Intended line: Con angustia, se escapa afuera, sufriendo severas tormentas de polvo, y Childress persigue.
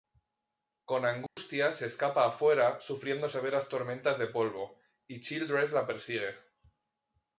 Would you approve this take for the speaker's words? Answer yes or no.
no